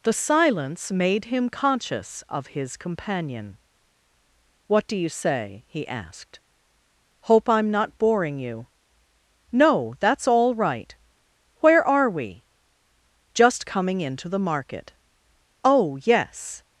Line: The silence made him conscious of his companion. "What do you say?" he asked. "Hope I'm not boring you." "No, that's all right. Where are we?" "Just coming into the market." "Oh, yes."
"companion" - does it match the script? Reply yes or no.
yes